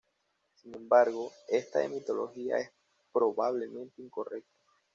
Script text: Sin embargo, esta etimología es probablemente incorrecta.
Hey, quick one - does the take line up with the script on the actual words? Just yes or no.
yes